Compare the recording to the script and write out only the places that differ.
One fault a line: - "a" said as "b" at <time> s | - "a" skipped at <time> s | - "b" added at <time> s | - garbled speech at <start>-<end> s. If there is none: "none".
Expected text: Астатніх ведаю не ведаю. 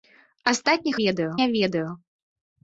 none